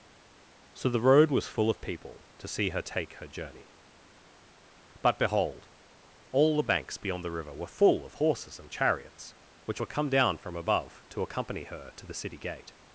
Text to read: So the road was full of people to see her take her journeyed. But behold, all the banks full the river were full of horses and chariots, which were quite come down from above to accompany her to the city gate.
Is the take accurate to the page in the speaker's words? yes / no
no